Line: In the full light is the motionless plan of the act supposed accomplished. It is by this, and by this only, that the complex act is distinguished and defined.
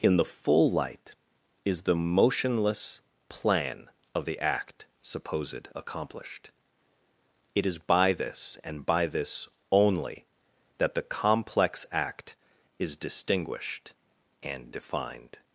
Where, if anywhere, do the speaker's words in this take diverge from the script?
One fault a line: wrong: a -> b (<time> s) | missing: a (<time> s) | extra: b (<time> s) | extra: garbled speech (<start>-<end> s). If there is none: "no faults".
no faults